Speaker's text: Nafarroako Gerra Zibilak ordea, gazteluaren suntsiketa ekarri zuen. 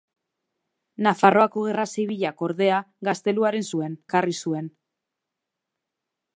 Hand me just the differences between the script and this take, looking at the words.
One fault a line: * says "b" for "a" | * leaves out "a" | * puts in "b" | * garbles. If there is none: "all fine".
* says "zuen" for "suntsiketa"